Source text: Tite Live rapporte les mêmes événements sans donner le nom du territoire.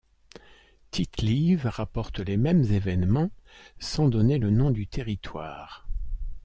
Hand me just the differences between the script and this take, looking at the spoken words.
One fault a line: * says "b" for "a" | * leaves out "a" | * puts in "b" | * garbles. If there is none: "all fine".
all fine